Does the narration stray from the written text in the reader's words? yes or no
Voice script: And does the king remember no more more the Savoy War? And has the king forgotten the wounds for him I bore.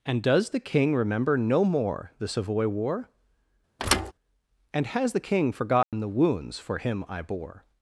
yes